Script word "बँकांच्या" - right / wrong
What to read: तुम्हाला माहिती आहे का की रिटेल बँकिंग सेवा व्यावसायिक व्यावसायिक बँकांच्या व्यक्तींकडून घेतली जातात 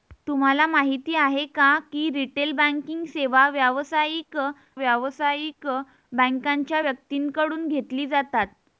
right